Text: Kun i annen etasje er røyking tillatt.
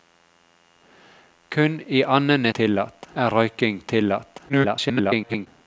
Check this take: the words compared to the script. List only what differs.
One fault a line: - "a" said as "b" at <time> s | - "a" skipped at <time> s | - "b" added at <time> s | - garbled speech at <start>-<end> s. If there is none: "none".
- "etasje" said as "tillatt" at 2.5 s
- garbled speech at 4.5-5.5 s